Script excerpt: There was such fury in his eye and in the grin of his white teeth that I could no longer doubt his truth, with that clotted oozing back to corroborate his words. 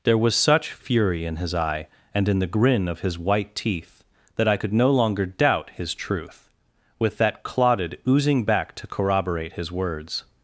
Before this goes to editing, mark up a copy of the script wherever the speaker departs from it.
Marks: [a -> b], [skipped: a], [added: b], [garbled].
There was such fury in his eye and in the grin of his white teeth that I could no longer doubt his truth, with that clotted oozing back to corroborate his words.